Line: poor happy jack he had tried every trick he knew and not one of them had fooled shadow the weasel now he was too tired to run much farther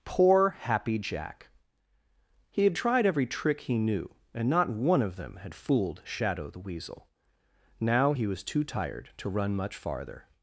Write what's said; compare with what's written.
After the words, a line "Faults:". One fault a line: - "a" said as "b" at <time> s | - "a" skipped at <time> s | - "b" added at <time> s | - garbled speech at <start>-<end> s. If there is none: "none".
poor happy jack he had tried every trick he knew and not one of them had fooled shadow the weasel now he was too tired to run much farther
Faults:
none